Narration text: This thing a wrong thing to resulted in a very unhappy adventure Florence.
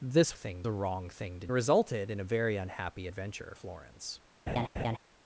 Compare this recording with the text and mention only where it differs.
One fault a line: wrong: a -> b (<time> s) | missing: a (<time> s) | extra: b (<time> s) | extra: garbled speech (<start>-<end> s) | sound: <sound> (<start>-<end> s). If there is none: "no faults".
sound: laugh (4.5-5.0 s)